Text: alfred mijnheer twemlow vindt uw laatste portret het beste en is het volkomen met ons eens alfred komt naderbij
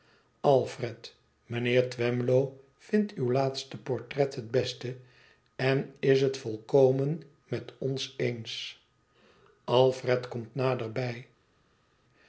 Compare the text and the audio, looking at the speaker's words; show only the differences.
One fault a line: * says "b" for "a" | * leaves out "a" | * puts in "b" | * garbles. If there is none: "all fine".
all fine